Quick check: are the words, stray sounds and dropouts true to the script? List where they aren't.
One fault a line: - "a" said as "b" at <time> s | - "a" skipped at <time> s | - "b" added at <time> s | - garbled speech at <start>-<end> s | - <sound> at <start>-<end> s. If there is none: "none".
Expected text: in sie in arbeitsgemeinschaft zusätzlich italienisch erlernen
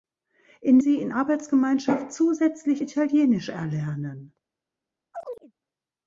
- chirp at 5.1-5.5 s